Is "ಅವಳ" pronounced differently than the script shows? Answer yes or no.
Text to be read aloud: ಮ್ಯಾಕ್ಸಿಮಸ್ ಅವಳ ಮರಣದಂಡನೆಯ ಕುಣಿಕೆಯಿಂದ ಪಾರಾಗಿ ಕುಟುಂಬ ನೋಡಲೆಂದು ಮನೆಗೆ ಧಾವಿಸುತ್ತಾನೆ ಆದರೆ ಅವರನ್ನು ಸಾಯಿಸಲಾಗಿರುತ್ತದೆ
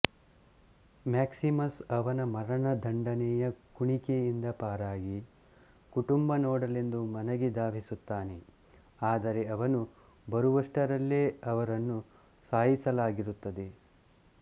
yes